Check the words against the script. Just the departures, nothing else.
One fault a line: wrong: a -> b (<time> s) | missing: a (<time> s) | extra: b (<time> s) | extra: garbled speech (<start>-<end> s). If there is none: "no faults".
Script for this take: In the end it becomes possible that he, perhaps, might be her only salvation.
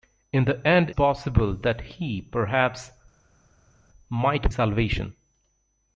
missing: it becomes (0.9 s)
missing: be her only (4.5 s)